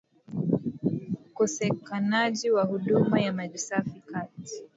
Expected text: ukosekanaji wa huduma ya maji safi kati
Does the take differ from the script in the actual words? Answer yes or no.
no